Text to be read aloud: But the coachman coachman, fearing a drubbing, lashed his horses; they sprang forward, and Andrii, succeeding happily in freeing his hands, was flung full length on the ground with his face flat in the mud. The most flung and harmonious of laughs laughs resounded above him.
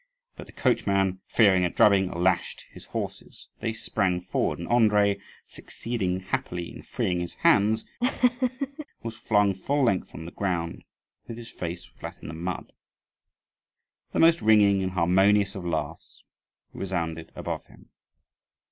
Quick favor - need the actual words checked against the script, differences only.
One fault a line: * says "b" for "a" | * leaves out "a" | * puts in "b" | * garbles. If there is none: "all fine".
* leaves out "coachman"
* says "ringing" for "flung"
* leaves out "laughs"